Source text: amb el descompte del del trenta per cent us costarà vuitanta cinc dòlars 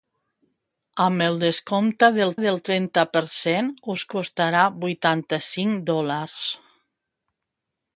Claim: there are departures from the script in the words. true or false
false